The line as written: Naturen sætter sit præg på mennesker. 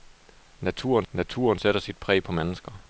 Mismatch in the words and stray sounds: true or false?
true